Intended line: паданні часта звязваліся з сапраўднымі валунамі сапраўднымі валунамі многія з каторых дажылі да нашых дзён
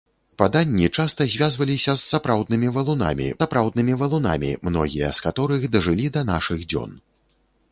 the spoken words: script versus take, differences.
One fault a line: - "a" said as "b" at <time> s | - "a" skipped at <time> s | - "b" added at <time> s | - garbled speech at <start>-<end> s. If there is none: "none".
none